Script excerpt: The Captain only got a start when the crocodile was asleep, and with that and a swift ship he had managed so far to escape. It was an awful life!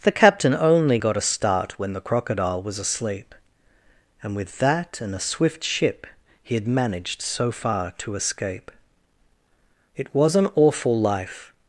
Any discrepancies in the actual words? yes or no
no